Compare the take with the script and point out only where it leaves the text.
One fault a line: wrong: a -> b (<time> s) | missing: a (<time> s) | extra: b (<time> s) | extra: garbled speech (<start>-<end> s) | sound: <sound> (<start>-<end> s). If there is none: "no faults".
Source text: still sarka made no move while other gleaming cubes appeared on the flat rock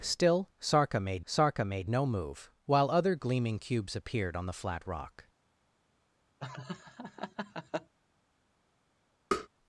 extra: sarka made (1.3 s)
sound: laugh (6.4-7.9 s)
sound: tap (9.3-9.5 s)